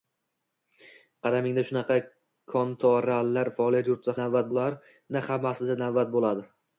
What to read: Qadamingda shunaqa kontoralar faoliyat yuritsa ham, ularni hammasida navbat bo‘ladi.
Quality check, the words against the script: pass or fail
fail